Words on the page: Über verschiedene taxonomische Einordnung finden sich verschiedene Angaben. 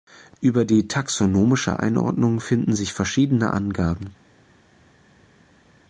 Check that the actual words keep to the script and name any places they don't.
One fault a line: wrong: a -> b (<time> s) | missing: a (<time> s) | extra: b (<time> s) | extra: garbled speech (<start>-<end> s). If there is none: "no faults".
wrong: verschiedene -> die (0.7 s)